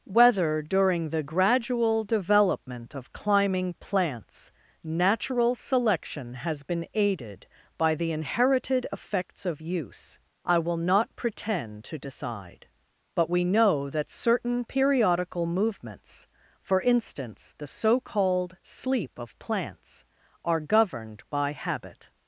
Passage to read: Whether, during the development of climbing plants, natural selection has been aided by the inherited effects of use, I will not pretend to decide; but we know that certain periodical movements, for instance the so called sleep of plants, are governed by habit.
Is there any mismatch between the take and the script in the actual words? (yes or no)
yes